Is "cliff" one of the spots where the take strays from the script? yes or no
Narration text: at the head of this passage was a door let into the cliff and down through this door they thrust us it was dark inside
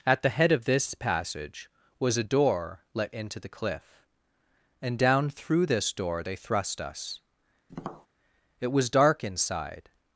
no